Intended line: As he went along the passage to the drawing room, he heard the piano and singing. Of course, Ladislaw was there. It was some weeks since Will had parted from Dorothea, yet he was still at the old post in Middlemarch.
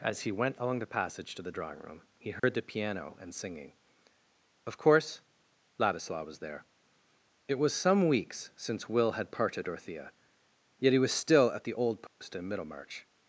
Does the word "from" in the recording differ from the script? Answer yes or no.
yes